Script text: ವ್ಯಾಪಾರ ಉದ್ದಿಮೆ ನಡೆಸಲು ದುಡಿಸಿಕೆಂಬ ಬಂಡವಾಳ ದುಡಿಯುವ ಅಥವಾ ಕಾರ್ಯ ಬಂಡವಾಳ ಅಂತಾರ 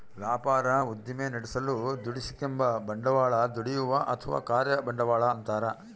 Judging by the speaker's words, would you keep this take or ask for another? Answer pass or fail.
pass